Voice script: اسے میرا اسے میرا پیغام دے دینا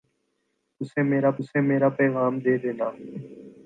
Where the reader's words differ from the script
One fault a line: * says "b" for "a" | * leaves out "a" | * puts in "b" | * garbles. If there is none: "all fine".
all fine